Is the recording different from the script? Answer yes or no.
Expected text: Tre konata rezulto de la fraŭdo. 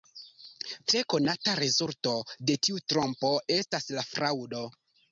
yes